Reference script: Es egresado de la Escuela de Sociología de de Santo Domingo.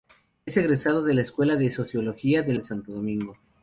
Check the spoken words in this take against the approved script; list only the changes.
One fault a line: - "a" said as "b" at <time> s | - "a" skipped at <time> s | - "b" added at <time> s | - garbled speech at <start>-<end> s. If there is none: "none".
none